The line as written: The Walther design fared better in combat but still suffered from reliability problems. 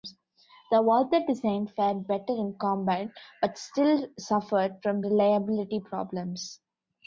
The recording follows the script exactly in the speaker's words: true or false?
true